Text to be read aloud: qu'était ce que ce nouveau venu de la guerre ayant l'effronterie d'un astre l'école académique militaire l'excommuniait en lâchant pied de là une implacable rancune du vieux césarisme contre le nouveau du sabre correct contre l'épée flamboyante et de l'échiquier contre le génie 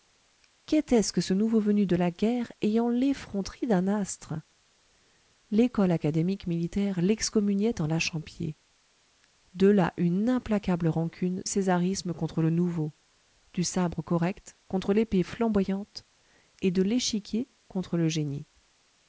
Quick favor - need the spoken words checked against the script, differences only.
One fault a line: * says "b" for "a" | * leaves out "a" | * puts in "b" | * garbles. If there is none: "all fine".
* leaves out "du vieux"